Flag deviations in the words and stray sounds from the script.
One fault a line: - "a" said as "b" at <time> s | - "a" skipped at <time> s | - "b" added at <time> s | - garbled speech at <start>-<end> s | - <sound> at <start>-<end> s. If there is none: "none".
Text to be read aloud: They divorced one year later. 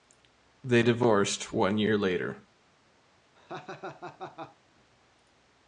- laugh at 3.3-4.6 s